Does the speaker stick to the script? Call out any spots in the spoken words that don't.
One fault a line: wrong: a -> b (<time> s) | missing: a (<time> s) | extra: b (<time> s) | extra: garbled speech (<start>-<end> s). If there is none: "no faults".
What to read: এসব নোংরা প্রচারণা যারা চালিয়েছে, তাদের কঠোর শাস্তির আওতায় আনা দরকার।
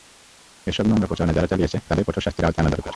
no faults